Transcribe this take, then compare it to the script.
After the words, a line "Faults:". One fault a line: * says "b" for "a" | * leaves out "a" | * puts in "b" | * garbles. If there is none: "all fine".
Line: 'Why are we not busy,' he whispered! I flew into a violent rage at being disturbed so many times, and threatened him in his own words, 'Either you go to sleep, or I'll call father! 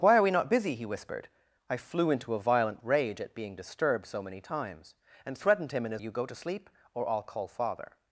'Why are we not busy,' he whispered! I flew into a violent rage at being disturbed so many times, and threatened him in his you go to sleep, or I'll call father!
Faults:
* leaves out "own words Either"